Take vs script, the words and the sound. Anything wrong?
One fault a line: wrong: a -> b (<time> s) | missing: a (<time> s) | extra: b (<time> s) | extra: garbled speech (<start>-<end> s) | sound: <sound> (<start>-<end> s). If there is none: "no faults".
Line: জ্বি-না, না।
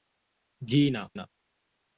no faults